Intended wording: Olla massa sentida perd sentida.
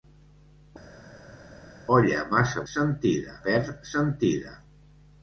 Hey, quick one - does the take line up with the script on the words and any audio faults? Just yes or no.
yes